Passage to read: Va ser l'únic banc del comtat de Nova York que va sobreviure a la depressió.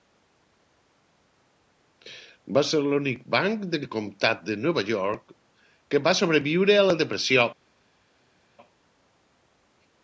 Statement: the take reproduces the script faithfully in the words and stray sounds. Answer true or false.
true